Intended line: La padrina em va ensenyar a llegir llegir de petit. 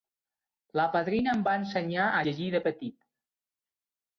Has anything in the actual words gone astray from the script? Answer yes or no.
yes